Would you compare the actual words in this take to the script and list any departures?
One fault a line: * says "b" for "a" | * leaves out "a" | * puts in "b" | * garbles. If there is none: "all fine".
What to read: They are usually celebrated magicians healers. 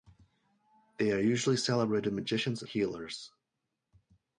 all fine